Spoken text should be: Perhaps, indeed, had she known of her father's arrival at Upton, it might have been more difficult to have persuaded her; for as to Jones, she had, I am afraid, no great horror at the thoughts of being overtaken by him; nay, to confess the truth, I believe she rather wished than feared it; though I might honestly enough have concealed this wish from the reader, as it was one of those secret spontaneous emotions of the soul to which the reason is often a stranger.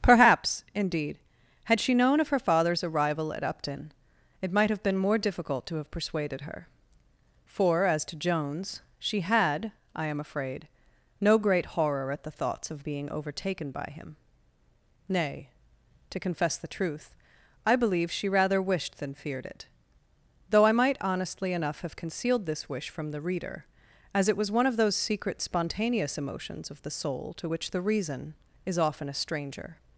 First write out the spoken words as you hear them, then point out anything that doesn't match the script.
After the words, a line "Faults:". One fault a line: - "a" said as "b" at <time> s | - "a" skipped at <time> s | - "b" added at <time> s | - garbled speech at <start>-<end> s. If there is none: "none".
Perhaps, indeed, had she known of her father's arrival at Upton, it might have been more difficult to have persuaded her; for as to Jones, she had, I am afraid, no great horror at the thoughts of being overtaken by him; nay, to confess the truth, I believe she rather wished than feared it; though I might honestly enough have concealed this wish from the reader, as it was one of those secret spontaneous emotions of the soul to which the reason is often a stranger.
Faults:
none